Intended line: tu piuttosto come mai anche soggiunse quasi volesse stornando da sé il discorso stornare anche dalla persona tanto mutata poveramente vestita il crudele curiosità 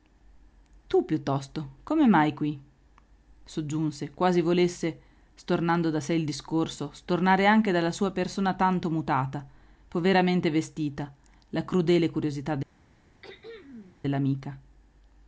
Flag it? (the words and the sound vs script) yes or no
yes